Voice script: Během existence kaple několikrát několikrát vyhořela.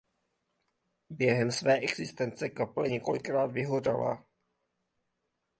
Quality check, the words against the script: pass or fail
fail